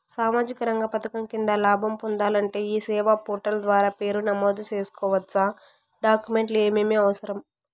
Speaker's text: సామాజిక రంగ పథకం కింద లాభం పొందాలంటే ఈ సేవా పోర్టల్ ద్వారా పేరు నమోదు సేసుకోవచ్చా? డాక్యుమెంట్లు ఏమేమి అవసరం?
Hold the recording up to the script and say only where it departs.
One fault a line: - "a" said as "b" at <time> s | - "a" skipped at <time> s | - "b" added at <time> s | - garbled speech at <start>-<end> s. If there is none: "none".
none